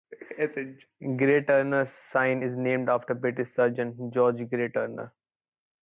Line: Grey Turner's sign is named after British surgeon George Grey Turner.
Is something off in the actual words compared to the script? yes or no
no